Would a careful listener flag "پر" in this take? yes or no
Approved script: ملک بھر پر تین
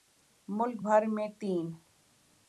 yes